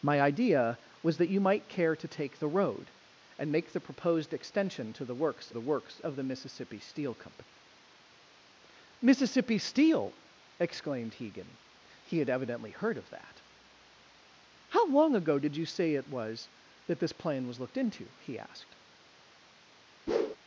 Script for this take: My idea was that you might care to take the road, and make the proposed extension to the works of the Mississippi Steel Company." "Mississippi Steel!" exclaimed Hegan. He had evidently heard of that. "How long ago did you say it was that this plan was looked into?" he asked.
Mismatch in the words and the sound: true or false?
true